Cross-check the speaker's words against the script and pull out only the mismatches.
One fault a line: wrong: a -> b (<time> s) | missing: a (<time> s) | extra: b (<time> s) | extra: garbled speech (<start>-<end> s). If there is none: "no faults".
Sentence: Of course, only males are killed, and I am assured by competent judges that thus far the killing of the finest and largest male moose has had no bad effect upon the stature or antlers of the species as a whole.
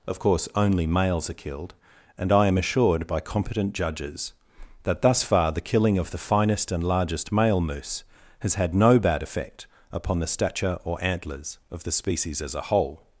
no faults